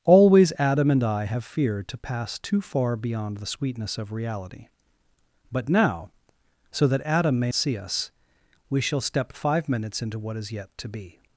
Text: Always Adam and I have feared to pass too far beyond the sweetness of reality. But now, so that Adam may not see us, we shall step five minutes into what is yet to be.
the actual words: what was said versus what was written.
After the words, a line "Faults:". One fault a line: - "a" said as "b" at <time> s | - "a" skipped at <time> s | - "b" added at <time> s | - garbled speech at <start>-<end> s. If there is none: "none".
Always Adam and I have feared to pass too far beyond the sweetness of reality. But now, so that Adam may see us, we shall step five minutes into what is yet to be.
Faults:
- "not" skipped at 7.5 s